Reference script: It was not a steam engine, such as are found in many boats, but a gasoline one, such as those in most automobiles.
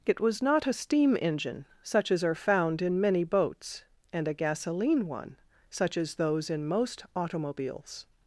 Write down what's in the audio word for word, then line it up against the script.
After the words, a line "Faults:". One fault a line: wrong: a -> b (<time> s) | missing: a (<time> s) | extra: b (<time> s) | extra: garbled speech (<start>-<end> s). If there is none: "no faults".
It was not a steam engine, such as are found in many boats, and a gasoline one, such as those in most automobiles.
Faults:
wrong: but -> and (4.1 s)